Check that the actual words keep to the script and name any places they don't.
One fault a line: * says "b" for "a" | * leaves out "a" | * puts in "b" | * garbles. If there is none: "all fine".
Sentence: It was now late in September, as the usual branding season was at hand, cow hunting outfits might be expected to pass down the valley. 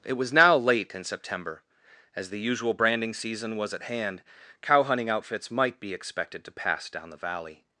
all fine